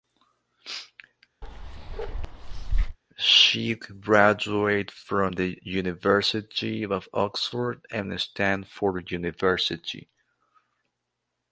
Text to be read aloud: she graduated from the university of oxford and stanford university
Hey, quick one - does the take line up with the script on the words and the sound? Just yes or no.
no